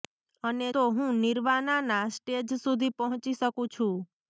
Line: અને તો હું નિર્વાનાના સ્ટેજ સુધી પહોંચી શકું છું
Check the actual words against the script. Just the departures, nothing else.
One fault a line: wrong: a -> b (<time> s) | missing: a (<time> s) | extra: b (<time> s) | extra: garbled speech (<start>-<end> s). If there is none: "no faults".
no faults